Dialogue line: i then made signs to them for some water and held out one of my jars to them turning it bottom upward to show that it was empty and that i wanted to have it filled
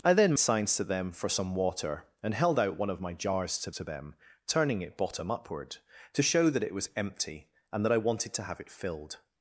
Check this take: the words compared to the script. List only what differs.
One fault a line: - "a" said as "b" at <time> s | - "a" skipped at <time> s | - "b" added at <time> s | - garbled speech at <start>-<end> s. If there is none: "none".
- "made" skipped at 0.3 s
- "to" added at 3.7 s